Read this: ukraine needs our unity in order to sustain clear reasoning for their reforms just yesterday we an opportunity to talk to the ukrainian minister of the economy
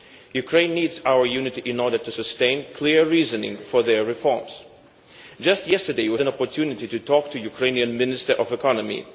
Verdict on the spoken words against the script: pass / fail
pass